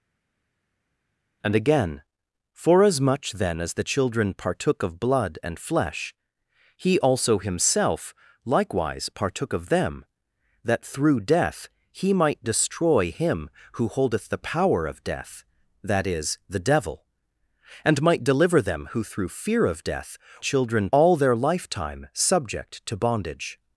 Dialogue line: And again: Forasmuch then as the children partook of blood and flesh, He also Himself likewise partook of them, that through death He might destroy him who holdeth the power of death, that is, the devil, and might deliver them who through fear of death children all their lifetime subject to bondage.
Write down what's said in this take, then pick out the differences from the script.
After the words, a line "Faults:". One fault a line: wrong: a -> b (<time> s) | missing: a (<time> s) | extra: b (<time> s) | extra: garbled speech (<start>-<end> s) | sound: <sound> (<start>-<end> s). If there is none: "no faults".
And again: Forasmuch then as the children partook of blood and flesh, He also Himself likewise partook of them, that through death He might destroy him who holdeth the power of death, that is, the devil, and might deliver them who through fear of death children all their lifetime subject to bondage.
Faults:
no faults